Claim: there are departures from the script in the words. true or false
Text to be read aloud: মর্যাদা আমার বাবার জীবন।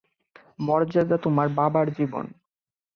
true